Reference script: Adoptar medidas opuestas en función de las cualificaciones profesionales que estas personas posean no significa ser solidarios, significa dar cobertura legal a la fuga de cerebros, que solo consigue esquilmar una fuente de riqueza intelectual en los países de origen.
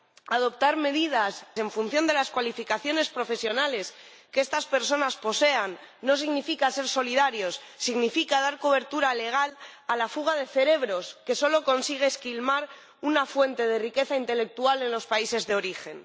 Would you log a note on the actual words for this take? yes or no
yes